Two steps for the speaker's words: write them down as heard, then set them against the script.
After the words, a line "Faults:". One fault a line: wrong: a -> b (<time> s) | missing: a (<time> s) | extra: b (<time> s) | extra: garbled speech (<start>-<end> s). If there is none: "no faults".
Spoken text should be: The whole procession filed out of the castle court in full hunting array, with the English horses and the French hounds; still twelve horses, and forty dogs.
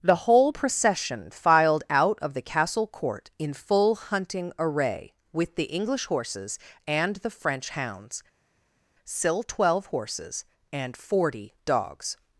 The whole procession filed out of the castle court in full hunting array, with the English horses and the French hounds; still twelve horses, and forty dogs.
Faults:
no faults